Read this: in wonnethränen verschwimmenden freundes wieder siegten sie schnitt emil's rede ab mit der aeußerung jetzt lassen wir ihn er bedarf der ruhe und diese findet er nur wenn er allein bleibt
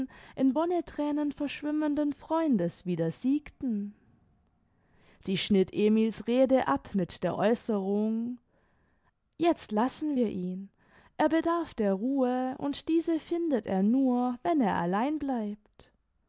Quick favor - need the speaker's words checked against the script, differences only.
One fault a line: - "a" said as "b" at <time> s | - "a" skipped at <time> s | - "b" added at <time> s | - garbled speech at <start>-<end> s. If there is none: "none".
none